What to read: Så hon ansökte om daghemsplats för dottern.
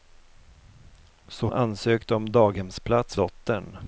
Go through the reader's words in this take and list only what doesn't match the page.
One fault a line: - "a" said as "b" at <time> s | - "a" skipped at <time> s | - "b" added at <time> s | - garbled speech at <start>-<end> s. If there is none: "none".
- "hon" skipped at 1.5 s
- "för" skipped at 3.2 s